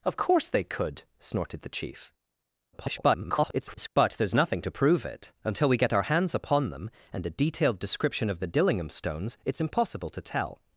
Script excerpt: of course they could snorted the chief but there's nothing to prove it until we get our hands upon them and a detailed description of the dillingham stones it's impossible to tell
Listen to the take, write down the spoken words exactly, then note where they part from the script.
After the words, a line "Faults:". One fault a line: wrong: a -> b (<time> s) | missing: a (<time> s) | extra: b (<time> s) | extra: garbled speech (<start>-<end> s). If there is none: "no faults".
of course they could snorted the chief [garbled] but there's nothing to prove it until we get our hands upon them and a detailed description of the dillingham stones it's impossible to tell
Faults:
extra: garbled speech (2.7-3.9 s)